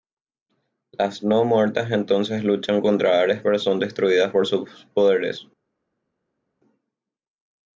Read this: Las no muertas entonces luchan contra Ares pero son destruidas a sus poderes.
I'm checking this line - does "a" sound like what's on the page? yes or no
no